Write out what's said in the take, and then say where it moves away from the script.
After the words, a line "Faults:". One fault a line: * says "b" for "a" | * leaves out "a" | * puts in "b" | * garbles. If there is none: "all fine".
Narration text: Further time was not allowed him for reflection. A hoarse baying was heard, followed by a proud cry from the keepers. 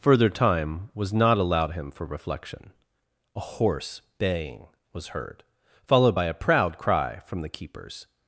Further time was not allowed him for reflection. A hoarse baying was heard, followed by a proud cry from the keepers.
Faults:
all fine